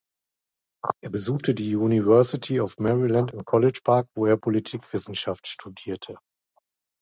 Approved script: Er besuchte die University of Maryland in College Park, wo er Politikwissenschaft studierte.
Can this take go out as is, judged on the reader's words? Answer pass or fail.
pass